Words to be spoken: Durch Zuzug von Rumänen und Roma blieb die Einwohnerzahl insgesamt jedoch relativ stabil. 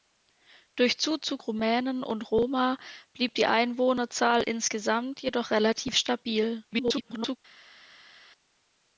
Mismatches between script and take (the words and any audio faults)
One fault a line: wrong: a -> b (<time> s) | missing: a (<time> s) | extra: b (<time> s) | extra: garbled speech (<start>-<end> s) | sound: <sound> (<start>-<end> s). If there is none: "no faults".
missing: von (1.4 s)
extra: garbled speech (6.7-7.4 s)